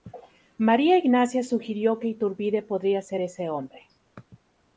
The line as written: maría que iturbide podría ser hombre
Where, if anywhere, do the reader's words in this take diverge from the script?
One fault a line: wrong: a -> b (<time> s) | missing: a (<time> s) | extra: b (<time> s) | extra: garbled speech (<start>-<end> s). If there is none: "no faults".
extra: ignacia sugirió (1.0 s)
extra: ese (3.2 s)